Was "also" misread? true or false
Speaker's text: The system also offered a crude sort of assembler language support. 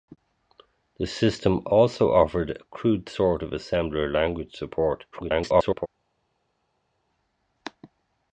false